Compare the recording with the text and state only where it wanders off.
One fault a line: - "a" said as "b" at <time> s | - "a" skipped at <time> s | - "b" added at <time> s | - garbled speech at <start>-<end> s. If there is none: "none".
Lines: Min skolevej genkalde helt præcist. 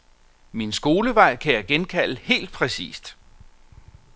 - "kan jeg" added at 1.4 s